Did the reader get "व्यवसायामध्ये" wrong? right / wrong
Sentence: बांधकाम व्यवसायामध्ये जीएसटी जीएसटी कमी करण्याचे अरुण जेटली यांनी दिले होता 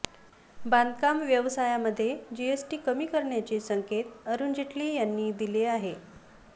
right